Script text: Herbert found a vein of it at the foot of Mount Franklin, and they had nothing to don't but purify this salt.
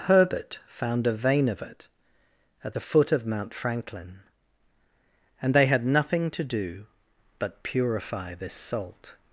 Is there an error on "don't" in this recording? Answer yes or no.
yes